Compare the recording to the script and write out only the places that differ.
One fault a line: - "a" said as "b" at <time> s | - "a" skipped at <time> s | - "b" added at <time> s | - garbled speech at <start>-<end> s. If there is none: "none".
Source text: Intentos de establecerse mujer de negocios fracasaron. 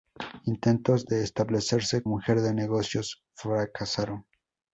none